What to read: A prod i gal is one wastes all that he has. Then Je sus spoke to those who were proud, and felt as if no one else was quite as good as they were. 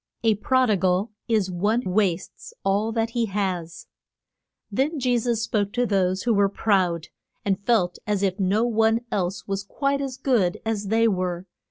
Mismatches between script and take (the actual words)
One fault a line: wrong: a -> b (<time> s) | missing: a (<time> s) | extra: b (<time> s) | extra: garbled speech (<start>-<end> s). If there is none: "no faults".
no faults